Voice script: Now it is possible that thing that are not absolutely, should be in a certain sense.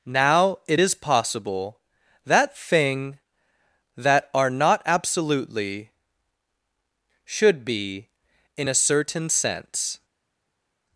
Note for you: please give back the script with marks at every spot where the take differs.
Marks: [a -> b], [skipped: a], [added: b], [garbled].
Now it is possible that thing that are not absolutely, should be in a certain sense.